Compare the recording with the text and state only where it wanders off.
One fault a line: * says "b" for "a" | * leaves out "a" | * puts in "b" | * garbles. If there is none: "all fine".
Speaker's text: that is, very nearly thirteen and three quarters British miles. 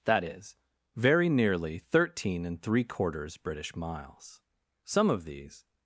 * puts in "Some of these"